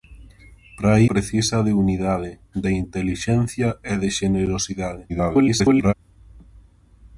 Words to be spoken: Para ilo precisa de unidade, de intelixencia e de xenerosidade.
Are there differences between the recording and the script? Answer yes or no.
yes